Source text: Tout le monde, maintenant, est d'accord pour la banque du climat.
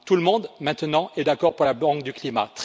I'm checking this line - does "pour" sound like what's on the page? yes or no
yes